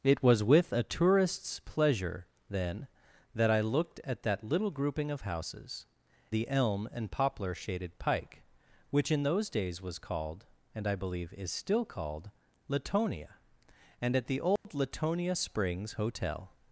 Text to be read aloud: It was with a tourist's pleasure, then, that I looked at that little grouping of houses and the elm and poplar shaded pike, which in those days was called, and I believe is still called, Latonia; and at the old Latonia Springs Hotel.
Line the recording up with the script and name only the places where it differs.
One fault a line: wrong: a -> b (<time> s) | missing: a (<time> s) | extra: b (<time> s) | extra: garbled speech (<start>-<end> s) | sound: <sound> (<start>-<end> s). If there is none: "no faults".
missing: and (5.8 s)
sound: dropout (14.6-14.6 s)